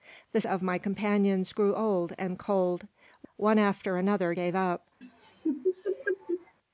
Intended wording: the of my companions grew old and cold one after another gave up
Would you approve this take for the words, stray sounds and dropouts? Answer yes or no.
no